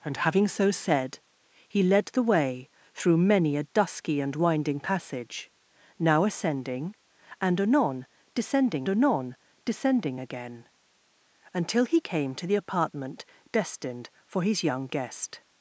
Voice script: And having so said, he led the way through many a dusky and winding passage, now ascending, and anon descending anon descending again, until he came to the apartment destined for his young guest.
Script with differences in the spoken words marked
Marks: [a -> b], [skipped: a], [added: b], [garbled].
And having so said, he led the way through many a dusky and winding passage, now ascending, and anon descending anon descending again, until he came to the apartment destined for his young guest.